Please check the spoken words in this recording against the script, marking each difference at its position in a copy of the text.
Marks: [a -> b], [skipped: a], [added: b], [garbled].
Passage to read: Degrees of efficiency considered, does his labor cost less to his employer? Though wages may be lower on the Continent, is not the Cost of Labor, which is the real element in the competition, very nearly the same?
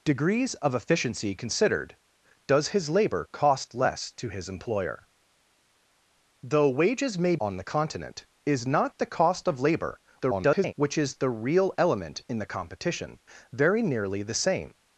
Degrees of efficiency considered, does his labor cost less to his employer? Though wages may [skipped: be lower] on the Continent, is not the Cost of Labor, [garbled] which is the real element in the competition, very nearly the same?